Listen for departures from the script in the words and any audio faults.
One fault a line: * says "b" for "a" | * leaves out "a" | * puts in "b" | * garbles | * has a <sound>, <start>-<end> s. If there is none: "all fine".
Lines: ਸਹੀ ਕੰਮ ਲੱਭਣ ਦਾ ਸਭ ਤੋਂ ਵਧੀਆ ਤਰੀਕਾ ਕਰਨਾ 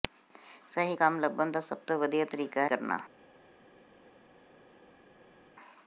all fine